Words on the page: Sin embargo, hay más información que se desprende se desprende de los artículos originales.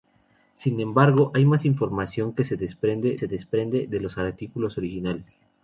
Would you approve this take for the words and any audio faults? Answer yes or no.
yes